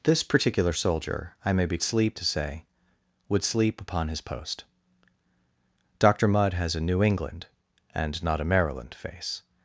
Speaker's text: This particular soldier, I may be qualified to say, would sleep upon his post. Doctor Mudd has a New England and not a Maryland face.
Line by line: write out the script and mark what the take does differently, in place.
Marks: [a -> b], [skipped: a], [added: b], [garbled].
This particular soldier, I may be [qualified -> sleep] to say, would sleep upon his post. Doctor Mudd has a New England and not a Maryland face.